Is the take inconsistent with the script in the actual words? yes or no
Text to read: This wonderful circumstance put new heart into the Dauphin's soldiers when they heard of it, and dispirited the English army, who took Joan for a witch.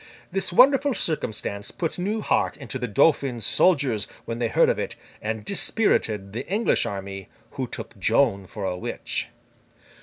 no